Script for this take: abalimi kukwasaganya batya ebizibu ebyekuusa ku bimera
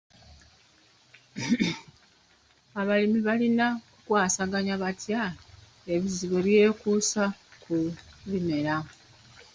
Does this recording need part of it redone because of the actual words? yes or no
yes